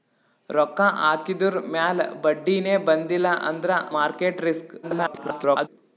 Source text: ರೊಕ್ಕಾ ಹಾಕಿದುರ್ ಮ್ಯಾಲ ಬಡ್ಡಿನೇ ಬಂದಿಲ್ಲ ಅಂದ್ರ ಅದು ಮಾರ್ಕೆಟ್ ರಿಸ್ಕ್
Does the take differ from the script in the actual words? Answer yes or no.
yes